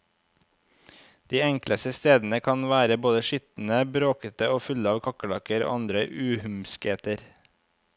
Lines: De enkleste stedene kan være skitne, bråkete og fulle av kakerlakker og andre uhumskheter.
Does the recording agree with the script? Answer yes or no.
no